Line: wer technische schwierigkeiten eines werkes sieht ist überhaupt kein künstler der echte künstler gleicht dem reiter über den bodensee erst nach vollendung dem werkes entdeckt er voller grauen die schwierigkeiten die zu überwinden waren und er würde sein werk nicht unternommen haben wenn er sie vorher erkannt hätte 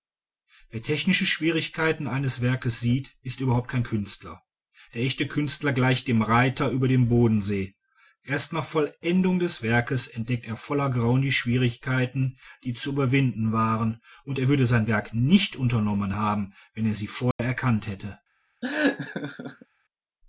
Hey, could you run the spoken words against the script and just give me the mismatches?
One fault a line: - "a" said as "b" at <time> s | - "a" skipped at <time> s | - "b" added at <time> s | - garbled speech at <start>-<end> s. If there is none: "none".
- "dem" said as "des" at 9.4 s